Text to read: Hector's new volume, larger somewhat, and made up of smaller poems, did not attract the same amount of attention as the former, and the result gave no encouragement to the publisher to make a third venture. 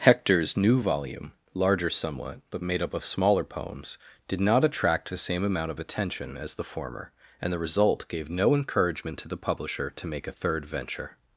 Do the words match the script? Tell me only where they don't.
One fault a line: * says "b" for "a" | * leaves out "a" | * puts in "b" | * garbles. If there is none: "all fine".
* says "but" for "and"